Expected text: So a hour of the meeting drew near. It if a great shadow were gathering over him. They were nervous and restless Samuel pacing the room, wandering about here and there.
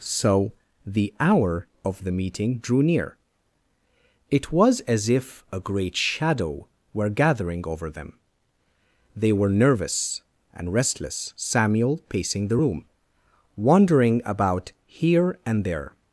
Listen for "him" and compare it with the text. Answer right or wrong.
wrong